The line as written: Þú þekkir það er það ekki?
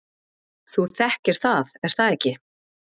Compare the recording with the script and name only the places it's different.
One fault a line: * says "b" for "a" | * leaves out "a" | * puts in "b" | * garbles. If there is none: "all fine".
all fine